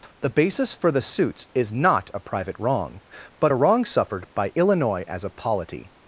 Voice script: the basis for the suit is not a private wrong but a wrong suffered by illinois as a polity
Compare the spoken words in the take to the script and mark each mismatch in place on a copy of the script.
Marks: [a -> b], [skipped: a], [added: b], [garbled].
the basis for the [suit -> suits] is not a private wrong but a wrong suffered by illinois as a polity